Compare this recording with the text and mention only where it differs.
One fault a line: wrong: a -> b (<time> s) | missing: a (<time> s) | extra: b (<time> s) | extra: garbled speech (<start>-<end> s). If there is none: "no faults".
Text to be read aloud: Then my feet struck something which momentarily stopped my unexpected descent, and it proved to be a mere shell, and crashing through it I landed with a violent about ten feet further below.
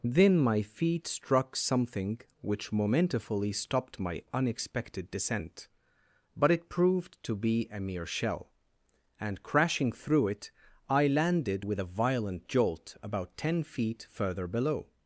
wrong: and -> but (6.3 s)
extra: jolt (12.5 s)